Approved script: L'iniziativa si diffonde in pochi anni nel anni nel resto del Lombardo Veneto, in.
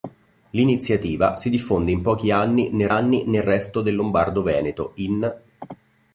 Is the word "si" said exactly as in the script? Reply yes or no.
yes